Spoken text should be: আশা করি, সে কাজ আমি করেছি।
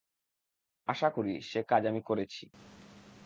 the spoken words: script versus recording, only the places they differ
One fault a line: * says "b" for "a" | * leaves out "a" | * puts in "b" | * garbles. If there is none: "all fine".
all fine